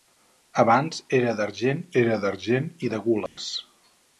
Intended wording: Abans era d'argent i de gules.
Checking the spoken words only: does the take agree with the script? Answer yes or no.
no